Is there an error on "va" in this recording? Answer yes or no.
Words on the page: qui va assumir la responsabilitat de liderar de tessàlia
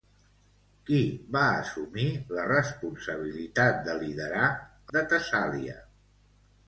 no